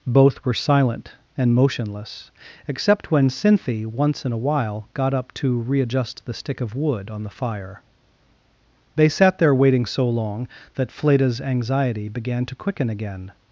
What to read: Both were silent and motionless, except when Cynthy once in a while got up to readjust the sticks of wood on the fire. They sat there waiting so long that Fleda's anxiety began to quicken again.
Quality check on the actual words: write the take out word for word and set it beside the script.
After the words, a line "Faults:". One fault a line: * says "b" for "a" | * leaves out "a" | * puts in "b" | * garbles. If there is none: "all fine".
Both were silent and motionless, except when Cynthy once in a while got up to readjust the stick of wood on the fire. They sat there waiting so long that Fleda's anxiety began to quicken again.
Faults:
* says "stick" for "sticks"